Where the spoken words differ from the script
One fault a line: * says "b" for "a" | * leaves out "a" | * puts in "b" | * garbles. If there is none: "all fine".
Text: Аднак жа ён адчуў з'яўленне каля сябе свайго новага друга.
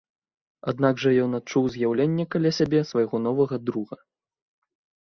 all fine